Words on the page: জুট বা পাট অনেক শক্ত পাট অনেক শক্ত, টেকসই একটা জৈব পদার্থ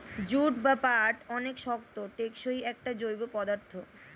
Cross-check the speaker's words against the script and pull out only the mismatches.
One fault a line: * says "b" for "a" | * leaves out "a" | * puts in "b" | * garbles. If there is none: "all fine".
* leaves out "পাট অনেক শক্ত"